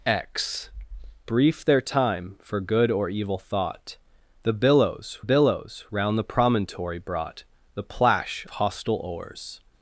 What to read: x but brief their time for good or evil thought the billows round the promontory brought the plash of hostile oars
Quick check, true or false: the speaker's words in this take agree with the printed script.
false